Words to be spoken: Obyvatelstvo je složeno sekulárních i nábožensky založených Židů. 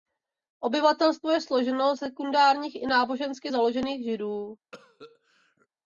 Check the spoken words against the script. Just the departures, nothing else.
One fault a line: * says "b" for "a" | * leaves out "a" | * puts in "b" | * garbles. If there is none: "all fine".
all fine